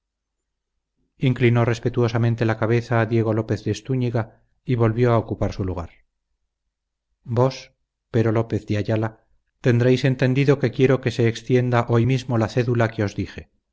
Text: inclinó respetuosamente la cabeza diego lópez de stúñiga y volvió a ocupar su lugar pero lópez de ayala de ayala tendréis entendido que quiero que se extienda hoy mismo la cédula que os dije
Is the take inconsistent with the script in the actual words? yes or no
yes